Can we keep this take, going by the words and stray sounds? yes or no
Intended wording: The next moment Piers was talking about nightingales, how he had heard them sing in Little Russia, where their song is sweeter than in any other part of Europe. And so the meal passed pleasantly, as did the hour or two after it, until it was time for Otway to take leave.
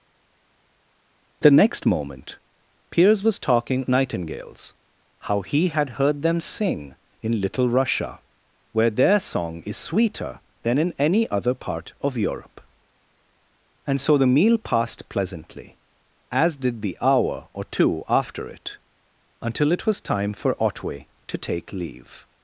no